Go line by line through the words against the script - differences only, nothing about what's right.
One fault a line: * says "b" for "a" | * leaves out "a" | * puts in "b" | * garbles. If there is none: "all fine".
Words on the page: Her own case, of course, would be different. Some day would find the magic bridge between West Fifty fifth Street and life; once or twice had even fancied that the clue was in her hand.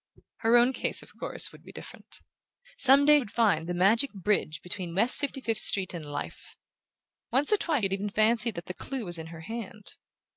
all fine